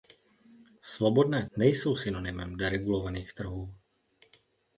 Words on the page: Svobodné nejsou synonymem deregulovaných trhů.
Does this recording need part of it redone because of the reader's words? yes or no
no